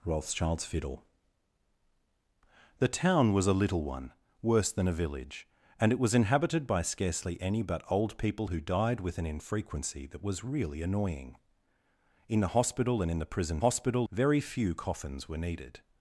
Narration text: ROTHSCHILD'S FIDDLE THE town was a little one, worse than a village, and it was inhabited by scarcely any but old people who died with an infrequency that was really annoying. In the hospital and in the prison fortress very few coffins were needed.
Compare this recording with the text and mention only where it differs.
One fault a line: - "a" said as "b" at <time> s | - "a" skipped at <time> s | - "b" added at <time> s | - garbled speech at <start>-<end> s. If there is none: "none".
- "fortress" said as "hospital" at 13.6 s